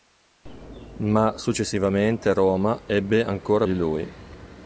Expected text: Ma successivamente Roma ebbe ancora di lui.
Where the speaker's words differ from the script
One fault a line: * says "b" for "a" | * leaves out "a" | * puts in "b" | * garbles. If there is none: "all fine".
all fine